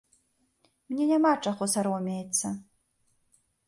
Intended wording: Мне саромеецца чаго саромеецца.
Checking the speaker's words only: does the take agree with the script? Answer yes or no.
no